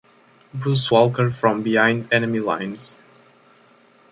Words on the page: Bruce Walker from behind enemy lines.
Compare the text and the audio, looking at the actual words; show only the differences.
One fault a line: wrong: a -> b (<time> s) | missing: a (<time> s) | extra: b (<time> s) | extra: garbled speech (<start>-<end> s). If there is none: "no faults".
no faults